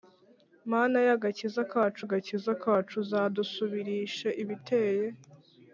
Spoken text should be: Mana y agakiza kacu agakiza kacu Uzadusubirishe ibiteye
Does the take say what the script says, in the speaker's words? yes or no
yes